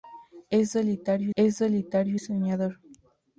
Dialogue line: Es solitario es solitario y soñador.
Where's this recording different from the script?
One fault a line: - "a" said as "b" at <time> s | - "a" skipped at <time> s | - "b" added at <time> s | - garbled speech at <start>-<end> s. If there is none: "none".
none